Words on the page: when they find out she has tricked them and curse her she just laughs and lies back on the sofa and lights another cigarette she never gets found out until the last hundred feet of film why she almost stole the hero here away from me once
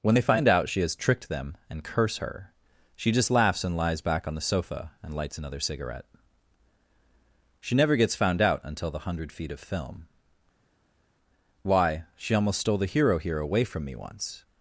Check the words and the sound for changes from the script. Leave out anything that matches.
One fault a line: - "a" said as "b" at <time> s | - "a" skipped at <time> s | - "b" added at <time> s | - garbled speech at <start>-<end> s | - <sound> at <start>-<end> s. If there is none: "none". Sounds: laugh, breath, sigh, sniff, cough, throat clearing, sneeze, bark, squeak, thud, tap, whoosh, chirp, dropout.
- "last" skipped at 9.0 s